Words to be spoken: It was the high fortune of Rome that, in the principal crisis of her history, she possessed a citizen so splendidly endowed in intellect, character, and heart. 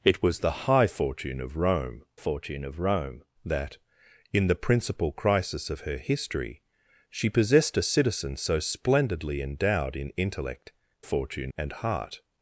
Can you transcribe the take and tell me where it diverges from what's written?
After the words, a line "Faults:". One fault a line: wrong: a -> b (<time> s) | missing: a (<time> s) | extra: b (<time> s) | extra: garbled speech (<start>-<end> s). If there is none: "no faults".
It was the high fortune of Rome fortune of Rome that, in the principal crisis of her history, she possessed a citizen so splendidly endowed in intellect, fortune, and heart.
Faults:
extra: fortune of Rome (2.1 s)
wrong: character -> fortune (11.0 s)